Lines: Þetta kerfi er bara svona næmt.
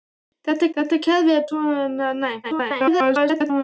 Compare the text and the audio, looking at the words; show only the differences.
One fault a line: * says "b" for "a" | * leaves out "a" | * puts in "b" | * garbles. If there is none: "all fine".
* puts in "þetta"
* leaves out "bara"
* garbles